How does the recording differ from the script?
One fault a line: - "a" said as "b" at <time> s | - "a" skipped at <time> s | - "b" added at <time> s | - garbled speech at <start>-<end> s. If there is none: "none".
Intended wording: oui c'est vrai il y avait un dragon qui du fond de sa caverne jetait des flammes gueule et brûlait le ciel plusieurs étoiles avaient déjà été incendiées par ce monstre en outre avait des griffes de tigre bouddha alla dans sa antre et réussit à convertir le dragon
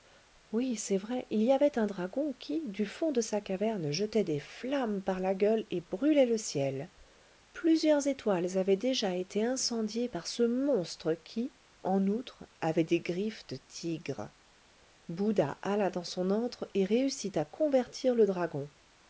- "par la" added at 5.0 s
- "qui" added at 11.1 s
- "sa" said as "son" at 16.0 s